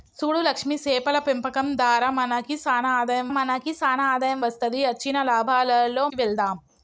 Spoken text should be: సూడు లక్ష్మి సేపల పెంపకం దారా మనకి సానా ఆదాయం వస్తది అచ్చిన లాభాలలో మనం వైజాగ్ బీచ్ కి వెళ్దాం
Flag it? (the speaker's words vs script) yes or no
yes